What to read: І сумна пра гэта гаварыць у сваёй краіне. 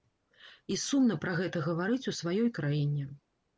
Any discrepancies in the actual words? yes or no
no